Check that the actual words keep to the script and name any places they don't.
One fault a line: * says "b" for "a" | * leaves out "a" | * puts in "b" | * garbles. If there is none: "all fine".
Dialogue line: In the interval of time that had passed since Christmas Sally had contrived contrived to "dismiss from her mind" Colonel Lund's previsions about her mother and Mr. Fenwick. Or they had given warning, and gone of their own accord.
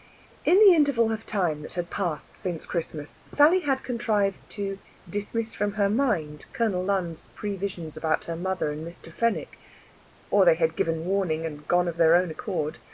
* leaves out "contrived"